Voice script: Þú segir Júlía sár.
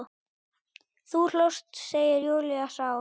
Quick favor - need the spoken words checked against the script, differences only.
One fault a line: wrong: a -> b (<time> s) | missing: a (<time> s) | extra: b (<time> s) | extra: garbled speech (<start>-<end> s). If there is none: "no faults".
extra: hlóst (1.3 s)